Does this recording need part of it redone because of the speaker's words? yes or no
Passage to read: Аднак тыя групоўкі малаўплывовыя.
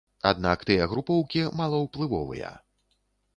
no